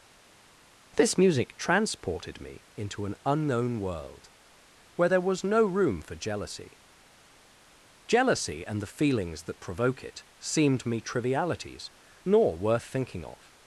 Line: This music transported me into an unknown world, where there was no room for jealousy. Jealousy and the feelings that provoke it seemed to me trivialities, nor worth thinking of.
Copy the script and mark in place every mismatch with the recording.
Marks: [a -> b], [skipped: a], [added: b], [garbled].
This music transported me into an unknown world, where there was no room for jealousy. Jealousy and the feelings that provoke it seemed [skipped: to] me trivialities, nor worth thinking of.